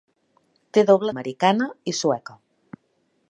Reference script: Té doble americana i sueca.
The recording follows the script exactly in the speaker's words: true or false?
true